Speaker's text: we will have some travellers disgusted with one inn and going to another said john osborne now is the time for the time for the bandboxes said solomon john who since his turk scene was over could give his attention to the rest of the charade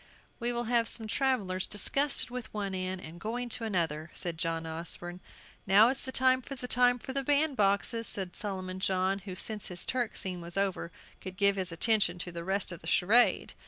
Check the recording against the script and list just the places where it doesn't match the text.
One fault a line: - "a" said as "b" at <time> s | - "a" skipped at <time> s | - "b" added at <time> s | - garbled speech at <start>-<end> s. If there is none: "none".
none